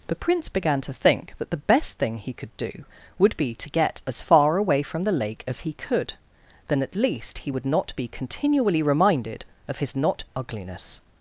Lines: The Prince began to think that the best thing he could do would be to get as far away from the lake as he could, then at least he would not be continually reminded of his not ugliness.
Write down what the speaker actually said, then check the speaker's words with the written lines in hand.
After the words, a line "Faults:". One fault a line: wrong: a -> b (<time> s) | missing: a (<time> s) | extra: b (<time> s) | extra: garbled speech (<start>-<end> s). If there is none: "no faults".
The Prince began to think that the best thing he could do would be to get as far away from the lake as he could, then at least he would not be continually reminded of his not ugliness.
Faults:
no faults